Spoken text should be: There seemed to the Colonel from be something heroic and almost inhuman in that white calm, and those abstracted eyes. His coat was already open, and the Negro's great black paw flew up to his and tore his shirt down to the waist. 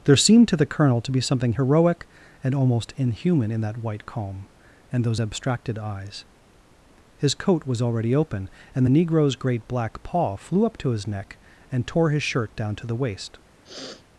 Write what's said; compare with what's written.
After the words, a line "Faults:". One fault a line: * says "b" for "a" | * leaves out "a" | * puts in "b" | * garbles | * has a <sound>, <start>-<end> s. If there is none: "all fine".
There seemed to the Colonel to be something heroic and almost inhuman in that white calm, and those abstracted eyes. His coat was already open, and the Negro's great black paw flew up to his neck and tore his shirt down to the waist.
Faults:
* says "to" for "from"
* puts in "neck"
* has a sniff, 13.6-14.0 s